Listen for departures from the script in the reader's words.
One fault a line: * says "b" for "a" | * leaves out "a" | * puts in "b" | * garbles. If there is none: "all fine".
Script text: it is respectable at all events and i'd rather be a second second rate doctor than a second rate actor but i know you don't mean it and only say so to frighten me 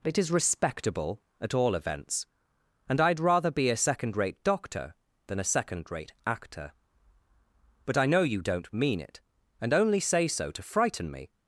* leaves out "second"